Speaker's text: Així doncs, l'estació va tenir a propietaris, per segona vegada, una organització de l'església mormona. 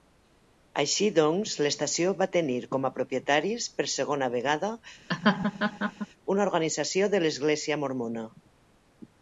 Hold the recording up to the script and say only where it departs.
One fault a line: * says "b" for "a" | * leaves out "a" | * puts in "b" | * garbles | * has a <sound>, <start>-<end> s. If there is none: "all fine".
* puts in "com"
* has a laugh, 5.1-6.1 s